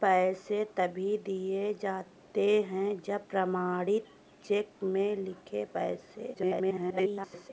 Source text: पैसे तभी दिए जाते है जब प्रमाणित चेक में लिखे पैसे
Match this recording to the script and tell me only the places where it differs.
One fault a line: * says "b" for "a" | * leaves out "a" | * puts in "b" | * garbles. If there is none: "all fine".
* garbles